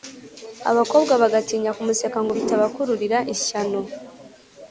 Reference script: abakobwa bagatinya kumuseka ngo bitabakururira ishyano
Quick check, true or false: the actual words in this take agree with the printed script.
true